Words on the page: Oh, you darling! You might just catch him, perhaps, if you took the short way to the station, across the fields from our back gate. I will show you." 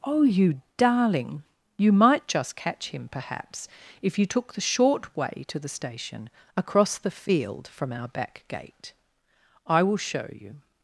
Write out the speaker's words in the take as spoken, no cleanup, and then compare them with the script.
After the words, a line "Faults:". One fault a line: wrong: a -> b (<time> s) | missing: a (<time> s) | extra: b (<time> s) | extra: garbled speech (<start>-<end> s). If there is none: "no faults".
Oh, you darling! You might just catch him, perhaps, if you took the short way to the station, across the field from our back gate. I will show you."
Faults:
wrong: fields -> field (7.1 s)